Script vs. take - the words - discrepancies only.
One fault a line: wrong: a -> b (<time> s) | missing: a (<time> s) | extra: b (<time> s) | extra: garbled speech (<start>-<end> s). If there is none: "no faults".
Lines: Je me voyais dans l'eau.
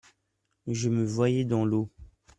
no faults